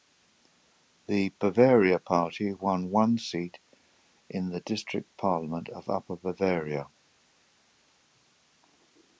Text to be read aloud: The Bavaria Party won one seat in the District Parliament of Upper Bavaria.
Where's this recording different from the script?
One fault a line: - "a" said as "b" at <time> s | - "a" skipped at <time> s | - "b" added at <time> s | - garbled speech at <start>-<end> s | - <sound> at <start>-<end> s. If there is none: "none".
none